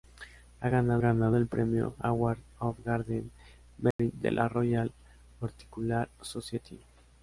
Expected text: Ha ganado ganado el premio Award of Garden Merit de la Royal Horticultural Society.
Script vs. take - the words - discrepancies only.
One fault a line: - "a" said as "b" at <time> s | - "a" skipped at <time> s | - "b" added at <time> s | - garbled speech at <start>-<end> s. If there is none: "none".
none